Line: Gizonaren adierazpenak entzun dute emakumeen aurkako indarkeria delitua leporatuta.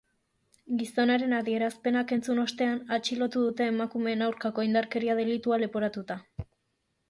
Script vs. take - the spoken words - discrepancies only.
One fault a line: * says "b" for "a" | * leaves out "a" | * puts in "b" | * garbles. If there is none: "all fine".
* puts in "ostean atxilotu"